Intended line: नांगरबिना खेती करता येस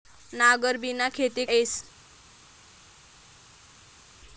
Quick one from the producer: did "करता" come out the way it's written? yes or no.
no